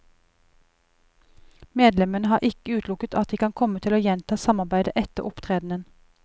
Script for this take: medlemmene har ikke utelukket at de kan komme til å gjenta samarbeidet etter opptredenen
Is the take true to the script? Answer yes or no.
yes